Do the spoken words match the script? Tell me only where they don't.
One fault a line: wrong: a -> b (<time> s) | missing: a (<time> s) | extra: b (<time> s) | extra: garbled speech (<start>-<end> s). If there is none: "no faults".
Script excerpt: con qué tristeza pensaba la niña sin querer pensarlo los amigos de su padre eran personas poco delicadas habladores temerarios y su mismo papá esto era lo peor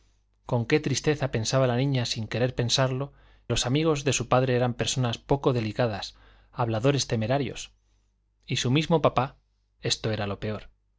no faults